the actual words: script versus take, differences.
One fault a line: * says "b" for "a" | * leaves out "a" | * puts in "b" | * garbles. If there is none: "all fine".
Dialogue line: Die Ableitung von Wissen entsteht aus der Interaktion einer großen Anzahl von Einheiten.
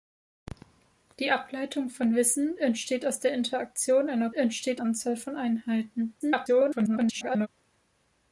* says "entsteht" for "großen"
* garbles